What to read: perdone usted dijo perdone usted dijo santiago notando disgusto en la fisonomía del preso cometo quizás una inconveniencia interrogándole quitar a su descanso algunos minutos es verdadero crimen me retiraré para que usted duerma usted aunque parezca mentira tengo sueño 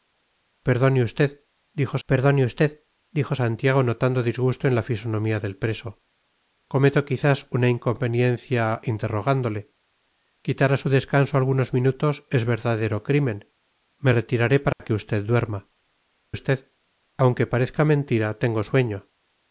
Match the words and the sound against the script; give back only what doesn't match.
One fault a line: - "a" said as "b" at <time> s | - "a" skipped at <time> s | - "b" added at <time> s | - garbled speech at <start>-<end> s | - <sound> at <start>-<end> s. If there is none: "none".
- dropout at 14.7-14.8 s